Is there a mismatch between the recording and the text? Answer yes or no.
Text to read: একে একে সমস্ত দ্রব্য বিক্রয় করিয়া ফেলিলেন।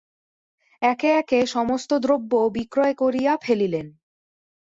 no